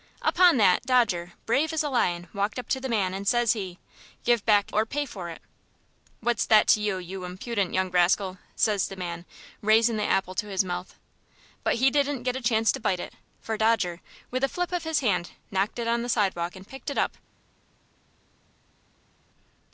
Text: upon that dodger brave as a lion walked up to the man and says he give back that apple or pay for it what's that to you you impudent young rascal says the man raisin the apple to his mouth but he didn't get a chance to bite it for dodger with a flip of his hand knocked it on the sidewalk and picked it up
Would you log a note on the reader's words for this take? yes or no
yes